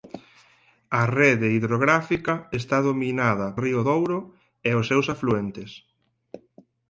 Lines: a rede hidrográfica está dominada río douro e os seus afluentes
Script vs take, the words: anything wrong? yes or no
no